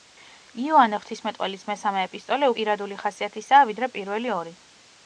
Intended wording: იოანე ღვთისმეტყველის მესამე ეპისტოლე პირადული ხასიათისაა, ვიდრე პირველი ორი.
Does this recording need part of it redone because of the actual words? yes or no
no